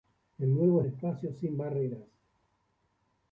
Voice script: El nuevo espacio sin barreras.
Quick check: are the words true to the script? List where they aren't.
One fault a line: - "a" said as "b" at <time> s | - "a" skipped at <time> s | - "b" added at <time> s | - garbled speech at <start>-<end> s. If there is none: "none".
none